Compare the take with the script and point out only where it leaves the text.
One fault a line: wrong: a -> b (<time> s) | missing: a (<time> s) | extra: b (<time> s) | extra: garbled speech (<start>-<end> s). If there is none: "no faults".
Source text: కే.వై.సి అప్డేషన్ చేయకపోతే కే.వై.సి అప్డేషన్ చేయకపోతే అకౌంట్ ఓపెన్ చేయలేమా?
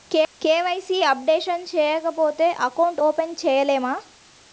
missing: కే.వై.సి అప్డేషన్ చేయకపోతే (2.5 s)